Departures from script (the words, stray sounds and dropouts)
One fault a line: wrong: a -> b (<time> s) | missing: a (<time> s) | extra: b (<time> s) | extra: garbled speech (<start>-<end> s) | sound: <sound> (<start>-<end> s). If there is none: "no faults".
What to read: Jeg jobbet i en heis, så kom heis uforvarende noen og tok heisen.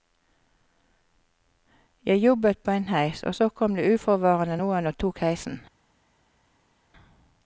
wrong: i -> på (2.6 s)
extra: og (3.2 s)
wrong: heis -> det (3.8 s)